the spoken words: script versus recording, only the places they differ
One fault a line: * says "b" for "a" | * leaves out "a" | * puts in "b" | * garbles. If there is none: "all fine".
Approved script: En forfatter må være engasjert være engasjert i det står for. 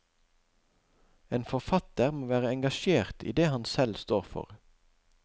* says "i det han selv" for "være engasjert i det"